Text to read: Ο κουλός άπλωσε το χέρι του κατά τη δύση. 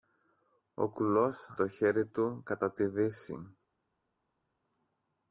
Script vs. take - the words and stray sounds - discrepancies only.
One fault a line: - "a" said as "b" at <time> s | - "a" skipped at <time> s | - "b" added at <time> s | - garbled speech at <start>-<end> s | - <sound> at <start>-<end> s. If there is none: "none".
- "άπλωσε" skipped at 1.6 s